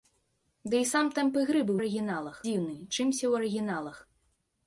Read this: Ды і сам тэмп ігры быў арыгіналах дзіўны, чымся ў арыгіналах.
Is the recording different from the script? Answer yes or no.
no